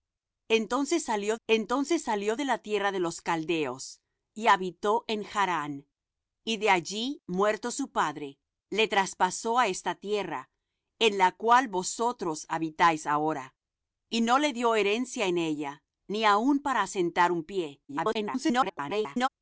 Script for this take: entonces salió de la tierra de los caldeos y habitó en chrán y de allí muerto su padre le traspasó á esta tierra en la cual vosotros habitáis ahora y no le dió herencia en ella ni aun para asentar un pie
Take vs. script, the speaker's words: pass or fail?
fail